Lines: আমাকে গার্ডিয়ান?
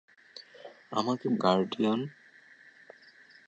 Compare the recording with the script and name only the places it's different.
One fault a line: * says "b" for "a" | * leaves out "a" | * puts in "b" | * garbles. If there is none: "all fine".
all fine